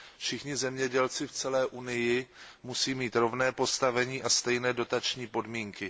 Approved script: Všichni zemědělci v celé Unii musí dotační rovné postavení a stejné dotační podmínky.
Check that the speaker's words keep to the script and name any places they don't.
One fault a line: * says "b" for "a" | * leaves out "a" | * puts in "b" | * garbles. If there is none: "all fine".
* says "mít" for "dotační"